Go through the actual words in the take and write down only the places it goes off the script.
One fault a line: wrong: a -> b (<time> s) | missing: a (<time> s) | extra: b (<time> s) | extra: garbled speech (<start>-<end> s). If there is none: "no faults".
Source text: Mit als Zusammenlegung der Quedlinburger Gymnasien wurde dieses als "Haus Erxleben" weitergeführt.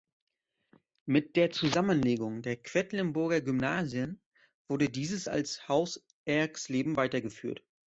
wrong: als -> der (1.4 s)